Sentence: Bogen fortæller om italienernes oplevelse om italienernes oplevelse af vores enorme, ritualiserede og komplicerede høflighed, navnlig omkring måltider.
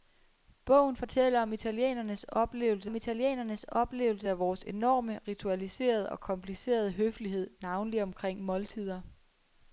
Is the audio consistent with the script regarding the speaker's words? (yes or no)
yes